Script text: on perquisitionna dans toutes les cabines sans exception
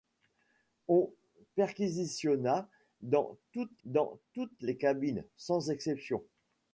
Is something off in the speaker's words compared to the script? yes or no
yes